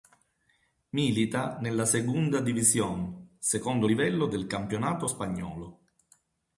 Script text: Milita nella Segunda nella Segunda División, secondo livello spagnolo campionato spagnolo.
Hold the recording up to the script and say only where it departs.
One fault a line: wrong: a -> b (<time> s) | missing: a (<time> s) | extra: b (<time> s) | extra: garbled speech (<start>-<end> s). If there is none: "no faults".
missing: nella Segunda (2.4 s)
wrong: spagnolo -> del (4.3 s)